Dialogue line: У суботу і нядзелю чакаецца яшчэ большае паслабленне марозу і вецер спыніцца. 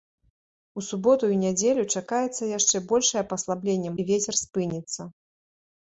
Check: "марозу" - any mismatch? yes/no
yes